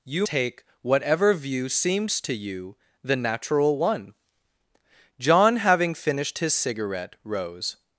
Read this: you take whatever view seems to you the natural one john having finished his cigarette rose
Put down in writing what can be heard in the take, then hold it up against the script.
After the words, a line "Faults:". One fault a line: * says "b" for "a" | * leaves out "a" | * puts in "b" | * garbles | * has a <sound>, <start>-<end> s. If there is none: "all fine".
you take whatever view seems to you the natural one john having finished his cigarette rose
Faults:
all fine